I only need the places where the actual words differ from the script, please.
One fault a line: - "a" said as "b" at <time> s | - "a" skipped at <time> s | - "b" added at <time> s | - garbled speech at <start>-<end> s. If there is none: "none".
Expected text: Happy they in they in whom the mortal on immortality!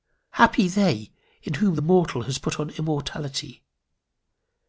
- "they in" skipped at 1.5 s
- "has put" added at 2.2 s